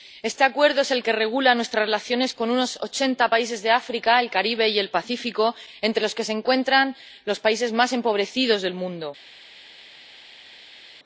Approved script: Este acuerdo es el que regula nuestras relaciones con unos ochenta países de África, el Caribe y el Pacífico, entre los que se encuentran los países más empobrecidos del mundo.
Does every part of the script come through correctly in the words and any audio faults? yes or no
yes